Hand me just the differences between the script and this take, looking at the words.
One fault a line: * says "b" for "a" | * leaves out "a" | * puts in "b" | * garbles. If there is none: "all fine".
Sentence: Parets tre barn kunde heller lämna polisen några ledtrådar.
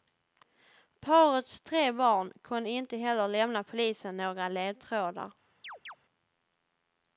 * puts in "inte"